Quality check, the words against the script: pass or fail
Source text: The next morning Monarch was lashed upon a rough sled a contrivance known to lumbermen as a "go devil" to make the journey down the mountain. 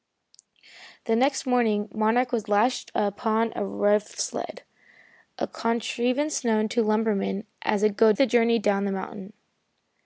fail